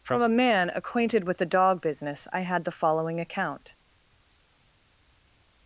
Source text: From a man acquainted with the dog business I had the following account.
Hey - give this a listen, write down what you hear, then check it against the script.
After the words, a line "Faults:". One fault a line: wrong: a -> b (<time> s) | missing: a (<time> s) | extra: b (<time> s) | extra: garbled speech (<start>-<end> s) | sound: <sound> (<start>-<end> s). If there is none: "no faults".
From a man acquainted with the dog business I had the following account.
Faults:
no faults